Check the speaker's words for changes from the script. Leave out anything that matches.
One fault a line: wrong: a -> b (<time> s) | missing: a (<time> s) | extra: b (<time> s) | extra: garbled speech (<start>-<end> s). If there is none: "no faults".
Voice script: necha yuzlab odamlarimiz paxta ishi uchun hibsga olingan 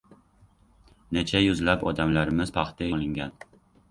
missing: ishi uchun hibsga (2.9 s)